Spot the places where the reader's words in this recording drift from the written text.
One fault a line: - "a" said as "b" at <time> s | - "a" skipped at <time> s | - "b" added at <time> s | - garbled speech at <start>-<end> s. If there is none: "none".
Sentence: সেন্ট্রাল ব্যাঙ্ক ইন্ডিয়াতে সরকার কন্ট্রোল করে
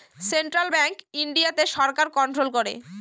none